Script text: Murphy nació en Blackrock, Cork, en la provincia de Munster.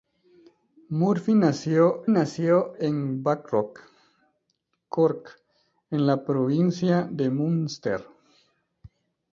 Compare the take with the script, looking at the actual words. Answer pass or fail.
fail